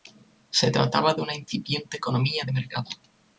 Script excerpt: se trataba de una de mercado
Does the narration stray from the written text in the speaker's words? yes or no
yes